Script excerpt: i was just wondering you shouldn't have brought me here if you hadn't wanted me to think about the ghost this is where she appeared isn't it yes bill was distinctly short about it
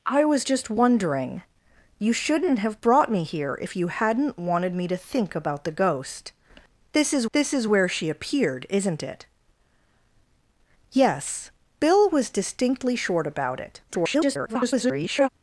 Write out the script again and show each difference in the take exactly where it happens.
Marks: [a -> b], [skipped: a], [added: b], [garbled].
i was just wondering you shouldn't have brought me here if you hadn't wanted me to think about the ghost this is [added: this is] where she appeared isn't it yes bill was distinctly short about it [garbled]